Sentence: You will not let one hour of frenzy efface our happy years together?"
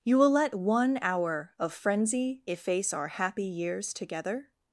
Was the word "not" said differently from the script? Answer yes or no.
yes